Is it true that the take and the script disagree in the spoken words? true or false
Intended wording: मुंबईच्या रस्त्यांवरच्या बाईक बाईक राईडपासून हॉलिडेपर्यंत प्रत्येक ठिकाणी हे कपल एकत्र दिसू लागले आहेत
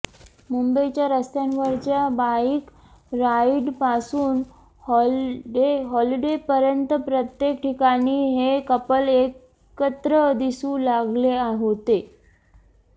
true